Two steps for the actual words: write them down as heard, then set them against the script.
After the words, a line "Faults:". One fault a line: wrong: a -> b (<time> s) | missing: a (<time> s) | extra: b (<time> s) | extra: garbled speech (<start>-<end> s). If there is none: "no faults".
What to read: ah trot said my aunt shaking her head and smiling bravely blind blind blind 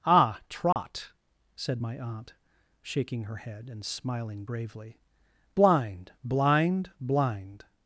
ah trot said my aunt shaking her head and smiling bravely blind blind blind
Faults:
no faults